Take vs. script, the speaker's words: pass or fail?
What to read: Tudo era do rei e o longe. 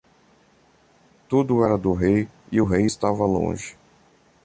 fail